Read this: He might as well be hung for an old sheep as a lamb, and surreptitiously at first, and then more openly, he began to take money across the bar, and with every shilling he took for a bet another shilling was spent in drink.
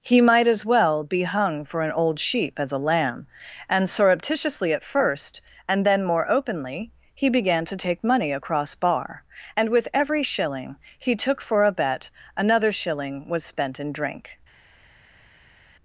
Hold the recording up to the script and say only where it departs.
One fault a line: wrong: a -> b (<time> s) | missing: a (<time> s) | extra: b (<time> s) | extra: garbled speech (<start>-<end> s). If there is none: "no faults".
missing: the (8.7 s)